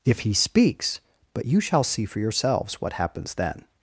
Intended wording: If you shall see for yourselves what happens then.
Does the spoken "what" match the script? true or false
true